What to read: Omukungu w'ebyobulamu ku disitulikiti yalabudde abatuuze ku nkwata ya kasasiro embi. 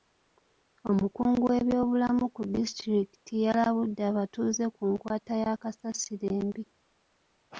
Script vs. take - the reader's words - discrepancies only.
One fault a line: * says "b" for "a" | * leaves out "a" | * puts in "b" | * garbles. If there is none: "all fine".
all fine